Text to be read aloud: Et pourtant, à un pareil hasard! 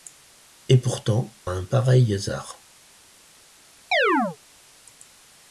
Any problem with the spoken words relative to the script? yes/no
no